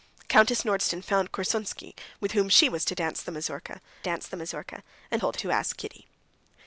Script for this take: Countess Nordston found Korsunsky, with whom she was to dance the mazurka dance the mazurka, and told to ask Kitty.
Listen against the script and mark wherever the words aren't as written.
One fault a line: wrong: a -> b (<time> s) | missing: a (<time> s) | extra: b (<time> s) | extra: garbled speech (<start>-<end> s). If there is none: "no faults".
no faults